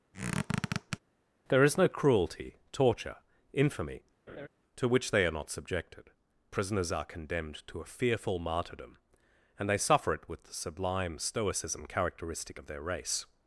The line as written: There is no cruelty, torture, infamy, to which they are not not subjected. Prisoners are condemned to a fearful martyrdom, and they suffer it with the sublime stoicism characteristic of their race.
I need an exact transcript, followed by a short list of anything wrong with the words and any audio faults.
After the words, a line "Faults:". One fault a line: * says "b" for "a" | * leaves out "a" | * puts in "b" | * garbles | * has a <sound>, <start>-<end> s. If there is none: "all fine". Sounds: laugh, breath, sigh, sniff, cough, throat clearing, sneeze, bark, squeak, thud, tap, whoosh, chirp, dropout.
There is no cruelty, torture, infamy, to which they are not subjected. Prisoners are condemned to a fearful martyrdom, and they suffer it with the sublime stoicism characteristic of their race.
Faults:
* has a squeak, 0.1-1.0 s
* has a laugh, 4.3-4.5 s
* leaves out "not"